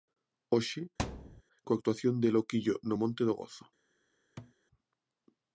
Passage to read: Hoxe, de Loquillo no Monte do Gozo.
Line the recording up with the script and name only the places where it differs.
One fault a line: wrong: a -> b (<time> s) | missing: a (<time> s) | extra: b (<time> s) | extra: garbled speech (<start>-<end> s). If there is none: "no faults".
extra: coa actuación (1.6 s)